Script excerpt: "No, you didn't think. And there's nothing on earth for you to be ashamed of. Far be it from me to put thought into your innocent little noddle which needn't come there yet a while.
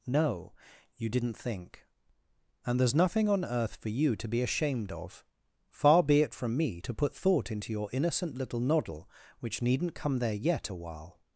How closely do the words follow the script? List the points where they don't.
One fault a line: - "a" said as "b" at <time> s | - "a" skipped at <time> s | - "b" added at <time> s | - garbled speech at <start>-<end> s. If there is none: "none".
none